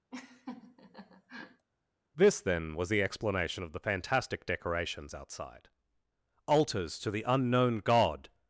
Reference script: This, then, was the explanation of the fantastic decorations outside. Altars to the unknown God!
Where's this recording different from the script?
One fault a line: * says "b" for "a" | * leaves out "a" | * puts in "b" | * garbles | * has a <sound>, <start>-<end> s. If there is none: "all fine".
* has a laugh, 0.1-1.7 s